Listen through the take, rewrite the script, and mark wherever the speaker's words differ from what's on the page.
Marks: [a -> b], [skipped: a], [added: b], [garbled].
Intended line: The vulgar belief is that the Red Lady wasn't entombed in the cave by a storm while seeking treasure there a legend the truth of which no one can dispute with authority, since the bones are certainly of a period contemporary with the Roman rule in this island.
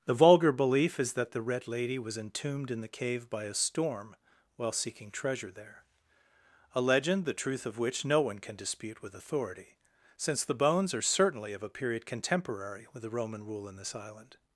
The vulgar belief is that the Red Lady [wasn't -> was] entombed in the cave by a storm while seeking treasure there a legend the truth of which no one can dispute with authority, since the bones are certainly of a period contemporary with the Roman rule in this island.